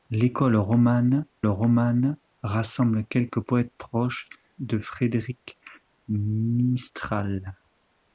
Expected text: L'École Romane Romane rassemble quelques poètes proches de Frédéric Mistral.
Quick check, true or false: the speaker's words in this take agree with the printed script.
true